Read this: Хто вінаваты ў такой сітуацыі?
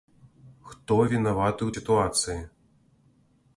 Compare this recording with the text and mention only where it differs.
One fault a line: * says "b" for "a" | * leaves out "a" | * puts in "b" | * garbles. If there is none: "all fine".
* leaves out "такой"